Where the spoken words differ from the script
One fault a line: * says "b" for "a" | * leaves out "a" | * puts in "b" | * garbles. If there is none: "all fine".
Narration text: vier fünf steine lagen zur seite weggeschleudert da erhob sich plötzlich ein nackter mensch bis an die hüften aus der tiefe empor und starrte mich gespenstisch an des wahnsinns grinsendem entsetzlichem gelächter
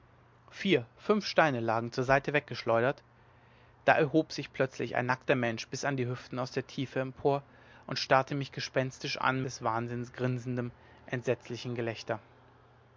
all fine